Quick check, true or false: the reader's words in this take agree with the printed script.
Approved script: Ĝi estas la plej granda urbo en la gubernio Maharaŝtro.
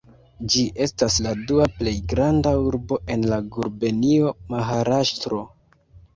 false